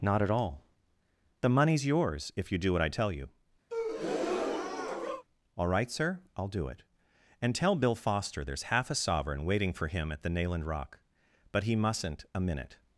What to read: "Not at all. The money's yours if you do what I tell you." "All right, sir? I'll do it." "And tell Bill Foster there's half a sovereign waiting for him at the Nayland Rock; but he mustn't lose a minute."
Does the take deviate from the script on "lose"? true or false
true